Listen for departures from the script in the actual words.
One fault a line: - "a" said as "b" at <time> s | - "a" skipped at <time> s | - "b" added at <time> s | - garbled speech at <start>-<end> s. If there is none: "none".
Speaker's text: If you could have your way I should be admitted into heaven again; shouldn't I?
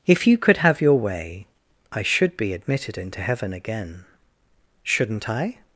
none